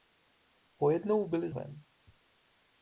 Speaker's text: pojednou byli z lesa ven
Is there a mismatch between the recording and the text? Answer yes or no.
yes